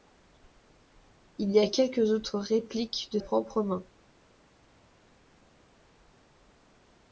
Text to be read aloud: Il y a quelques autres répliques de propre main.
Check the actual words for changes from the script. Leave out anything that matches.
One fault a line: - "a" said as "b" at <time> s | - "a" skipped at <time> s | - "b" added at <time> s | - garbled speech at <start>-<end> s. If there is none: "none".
none